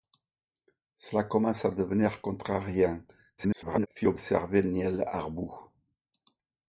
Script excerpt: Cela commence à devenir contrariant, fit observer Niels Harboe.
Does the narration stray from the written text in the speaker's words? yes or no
yes